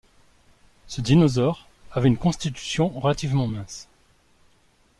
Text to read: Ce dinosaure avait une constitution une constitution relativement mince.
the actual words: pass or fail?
fail